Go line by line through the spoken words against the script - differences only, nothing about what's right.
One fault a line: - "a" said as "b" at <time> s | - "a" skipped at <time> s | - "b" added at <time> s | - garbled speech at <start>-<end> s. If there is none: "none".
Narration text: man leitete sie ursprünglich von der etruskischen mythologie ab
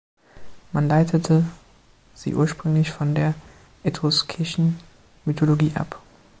none